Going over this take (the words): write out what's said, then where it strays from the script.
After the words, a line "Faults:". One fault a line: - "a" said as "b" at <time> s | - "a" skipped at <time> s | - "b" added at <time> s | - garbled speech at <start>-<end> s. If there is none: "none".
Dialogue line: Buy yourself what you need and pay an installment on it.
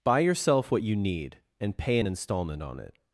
Buy yourself what you need and pay an installment on it.
Faults:
none